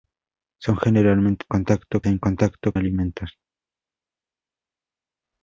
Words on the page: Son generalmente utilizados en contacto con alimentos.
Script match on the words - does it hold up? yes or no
no